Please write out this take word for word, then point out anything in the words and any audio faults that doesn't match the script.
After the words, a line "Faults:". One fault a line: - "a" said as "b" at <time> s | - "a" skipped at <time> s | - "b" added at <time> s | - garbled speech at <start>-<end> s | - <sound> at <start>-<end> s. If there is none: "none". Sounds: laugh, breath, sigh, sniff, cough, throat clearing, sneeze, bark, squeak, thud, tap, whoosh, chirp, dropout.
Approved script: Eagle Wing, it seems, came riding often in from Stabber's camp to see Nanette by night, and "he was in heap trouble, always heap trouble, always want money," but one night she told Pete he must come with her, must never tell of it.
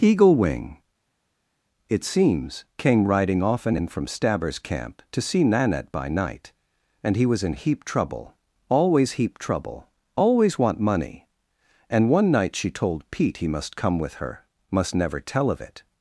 Eagle Wing, it seems, came riding often in from Stabber's camp to see Nanette by night, and "he was in heap trouble, always heap trouble, always want money," and one night she told Pete he must come with her, must never tell of it.
Faults:
- "but" said as "and" at 11.9 s